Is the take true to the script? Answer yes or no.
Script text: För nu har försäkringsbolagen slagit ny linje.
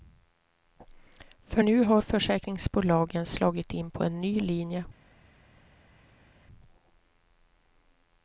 no